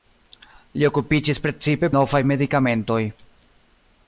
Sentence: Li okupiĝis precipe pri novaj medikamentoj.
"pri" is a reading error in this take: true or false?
true